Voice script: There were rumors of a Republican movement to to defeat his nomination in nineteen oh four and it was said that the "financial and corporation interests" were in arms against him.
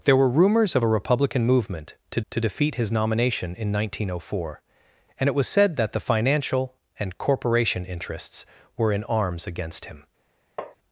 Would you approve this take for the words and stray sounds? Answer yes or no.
no